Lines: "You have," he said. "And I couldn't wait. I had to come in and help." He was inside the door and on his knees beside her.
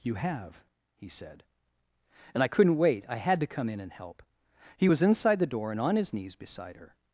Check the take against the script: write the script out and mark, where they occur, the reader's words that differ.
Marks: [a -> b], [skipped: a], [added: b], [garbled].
"You have," he said. "And I couldn't wait. I had to come in and help." He was inside the door and on his knees beside her.